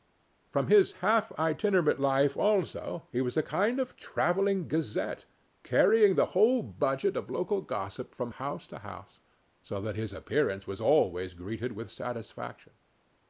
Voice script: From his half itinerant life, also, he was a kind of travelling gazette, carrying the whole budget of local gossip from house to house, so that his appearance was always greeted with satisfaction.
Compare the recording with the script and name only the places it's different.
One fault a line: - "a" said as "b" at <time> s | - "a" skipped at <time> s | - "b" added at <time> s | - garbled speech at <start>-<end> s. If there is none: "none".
none